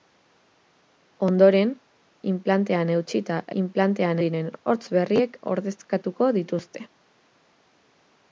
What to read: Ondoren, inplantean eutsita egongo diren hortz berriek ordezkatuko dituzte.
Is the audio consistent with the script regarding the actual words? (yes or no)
no